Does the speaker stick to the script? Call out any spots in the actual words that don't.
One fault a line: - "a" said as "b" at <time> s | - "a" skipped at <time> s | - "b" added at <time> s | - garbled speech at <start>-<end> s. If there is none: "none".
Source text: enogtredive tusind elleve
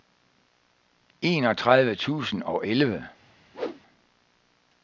- "og" added at 2.4 s